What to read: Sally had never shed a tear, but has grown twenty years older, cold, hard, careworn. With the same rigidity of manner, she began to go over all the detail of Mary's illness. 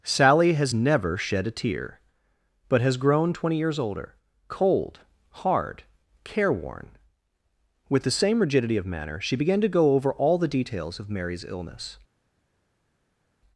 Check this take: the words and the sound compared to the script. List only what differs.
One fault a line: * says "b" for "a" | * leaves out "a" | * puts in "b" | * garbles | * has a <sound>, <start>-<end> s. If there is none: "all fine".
* says "has" for "had"
* says "details" for "detail"